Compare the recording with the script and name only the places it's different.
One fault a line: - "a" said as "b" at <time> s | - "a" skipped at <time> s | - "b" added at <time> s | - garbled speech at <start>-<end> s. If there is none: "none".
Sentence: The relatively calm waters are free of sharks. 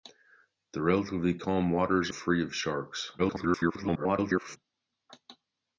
- "are" skipped at 2.1 s
- garbled speech at 3.2-4.6 s